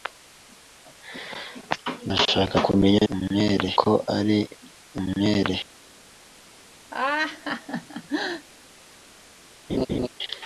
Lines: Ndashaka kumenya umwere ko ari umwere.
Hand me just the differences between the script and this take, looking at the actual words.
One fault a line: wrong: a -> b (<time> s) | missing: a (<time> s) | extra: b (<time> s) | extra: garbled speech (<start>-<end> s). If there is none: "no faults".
no faults